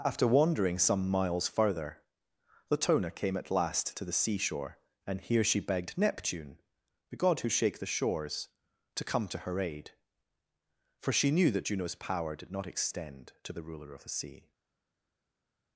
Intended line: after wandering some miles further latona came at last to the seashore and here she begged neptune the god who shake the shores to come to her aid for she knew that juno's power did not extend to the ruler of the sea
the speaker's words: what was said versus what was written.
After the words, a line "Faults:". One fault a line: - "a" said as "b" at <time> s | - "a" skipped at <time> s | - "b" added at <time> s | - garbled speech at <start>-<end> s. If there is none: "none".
after wandering some miles further latona came at last to the seashore and here she begged neptune the god who shake the shores to come to her aid for she knew that juno's power did not extend to the ruler of the sea
Faults:
none